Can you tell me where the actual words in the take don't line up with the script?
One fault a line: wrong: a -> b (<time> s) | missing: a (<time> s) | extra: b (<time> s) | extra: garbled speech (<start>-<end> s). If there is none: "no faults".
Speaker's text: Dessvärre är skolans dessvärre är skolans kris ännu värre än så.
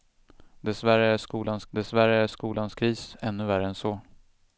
no faults